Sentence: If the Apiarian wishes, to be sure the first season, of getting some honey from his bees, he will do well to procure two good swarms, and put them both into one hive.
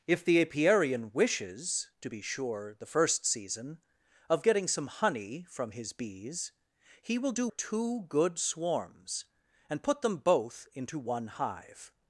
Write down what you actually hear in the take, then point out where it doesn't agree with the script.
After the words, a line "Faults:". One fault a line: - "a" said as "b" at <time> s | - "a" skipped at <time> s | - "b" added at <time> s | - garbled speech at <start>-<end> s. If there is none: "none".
If the Apiarian wishes, to be sure the first season, of getting some honey from his bees, he will do two good swarms, and put them both into one hive.
Faults:
- "well to procure" skipped at 7.5 s